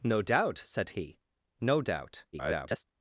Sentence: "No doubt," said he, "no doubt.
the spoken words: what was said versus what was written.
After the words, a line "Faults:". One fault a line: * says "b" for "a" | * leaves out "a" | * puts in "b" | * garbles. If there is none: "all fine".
"No doubt," said he, "no doubt. [garbled]
Faults:
* garbles